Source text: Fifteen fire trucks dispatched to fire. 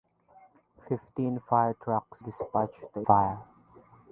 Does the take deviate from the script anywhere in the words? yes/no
no